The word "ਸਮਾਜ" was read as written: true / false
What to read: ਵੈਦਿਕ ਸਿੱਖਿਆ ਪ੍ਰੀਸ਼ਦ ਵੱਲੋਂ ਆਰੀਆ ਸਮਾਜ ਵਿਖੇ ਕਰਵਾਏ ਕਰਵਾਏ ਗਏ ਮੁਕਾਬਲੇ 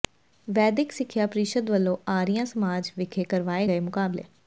true